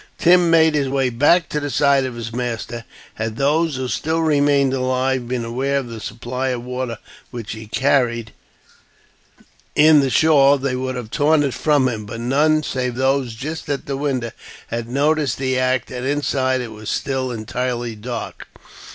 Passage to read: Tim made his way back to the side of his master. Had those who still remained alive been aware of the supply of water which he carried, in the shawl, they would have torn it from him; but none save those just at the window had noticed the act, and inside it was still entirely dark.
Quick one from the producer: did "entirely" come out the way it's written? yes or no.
yes